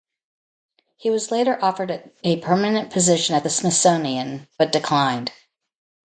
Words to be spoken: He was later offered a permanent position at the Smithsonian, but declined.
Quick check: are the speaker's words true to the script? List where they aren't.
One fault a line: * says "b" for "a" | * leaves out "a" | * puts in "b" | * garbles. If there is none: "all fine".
all fine